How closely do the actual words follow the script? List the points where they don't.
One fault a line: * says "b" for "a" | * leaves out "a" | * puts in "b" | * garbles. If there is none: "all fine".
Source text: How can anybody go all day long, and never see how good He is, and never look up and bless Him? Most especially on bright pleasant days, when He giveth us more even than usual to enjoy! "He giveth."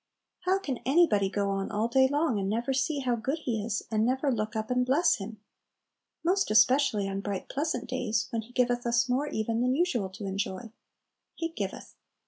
* puts in "on"